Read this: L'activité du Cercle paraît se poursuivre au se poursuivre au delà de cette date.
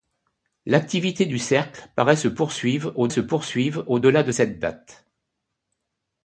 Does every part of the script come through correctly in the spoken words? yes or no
yes